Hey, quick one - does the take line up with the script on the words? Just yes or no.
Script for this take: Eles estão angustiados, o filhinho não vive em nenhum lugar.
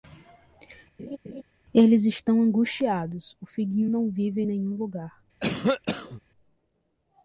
yes